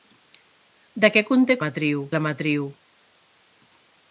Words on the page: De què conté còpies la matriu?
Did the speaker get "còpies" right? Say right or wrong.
wrong